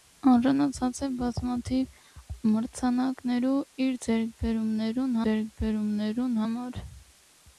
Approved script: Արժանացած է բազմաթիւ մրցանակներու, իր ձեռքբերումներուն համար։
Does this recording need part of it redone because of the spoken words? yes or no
yes